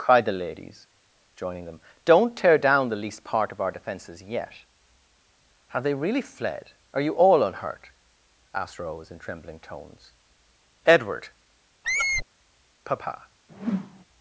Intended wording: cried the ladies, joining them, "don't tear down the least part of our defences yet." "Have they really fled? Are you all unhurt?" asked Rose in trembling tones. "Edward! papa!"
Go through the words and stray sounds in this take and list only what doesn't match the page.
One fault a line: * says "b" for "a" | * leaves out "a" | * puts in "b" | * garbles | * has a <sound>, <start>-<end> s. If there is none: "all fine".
* has a squeak, 11.8-12.3 s
* has a whoosh, 13.5-14.0 s